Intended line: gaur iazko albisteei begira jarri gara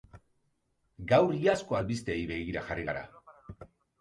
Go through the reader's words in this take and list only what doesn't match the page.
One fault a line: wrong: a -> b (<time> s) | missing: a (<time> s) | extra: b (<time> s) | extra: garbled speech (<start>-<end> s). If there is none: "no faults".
no faults